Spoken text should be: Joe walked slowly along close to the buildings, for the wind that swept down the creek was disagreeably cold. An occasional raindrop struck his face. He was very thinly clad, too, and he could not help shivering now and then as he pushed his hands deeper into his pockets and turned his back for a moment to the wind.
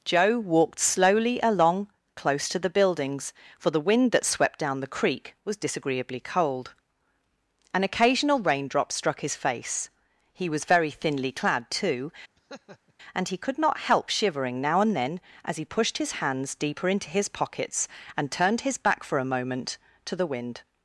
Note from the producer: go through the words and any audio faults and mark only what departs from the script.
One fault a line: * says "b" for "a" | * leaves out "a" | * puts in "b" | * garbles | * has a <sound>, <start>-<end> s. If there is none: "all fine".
* has a laugh, 12.4-12.9 s